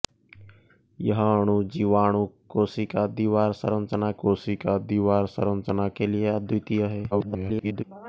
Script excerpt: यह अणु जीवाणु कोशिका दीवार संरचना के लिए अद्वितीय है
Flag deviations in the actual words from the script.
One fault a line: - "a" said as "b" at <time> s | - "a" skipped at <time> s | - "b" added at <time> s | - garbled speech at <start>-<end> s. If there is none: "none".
- "कोशिका दीवार संरचना" added at 4.2 s
- garbled speech at 7.1-7.8 s